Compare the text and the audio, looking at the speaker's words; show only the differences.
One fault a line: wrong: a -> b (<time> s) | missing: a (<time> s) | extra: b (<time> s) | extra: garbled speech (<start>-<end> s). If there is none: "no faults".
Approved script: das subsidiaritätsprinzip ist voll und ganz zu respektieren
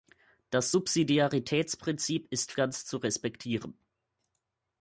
missing: voll und (2.5 s)